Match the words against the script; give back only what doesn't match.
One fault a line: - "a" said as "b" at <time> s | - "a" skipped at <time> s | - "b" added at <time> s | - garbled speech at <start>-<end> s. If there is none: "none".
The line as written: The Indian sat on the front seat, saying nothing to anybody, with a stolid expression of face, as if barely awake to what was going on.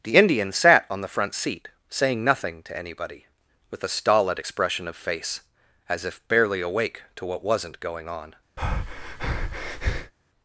- "was" said as "wasn't" at 7.4 s